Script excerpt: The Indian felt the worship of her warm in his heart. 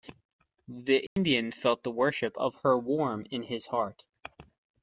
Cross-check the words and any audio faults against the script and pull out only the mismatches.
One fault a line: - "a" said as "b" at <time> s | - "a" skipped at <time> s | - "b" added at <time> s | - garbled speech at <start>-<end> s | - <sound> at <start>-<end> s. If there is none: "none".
- dropout at 1.1-1.2 s